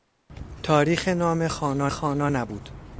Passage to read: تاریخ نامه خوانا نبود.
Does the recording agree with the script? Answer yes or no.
no